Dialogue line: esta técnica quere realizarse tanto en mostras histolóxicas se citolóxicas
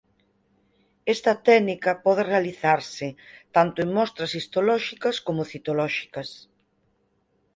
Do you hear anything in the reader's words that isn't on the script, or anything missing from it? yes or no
yes